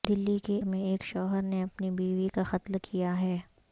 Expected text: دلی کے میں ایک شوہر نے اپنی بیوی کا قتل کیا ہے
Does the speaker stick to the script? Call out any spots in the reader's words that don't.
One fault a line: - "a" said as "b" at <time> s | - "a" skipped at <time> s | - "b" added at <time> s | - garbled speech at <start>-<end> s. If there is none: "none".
none